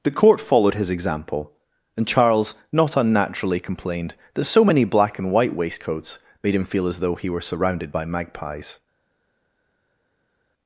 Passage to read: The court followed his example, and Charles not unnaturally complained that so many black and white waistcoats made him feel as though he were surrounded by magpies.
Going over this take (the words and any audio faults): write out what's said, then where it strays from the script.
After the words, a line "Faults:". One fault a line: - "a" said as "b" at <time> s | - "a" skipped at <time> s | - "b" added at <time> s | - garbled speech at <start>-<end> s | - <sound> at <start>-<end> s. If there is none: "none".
The court followed his example, and Charles not unnaturally complained that so many black and white waistcoats made him feel as though he were surrounded by magpies.
Faults:
none